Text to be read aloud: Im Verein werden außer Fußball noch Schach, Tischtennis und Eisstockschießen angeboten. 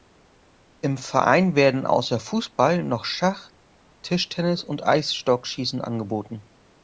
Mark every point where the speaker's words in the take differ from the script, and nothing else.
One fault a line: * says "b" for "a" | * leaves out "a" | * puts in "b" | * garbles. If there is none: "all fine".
all fine